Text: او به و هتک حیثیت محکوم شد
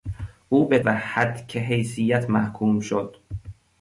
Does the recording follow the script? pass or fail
pass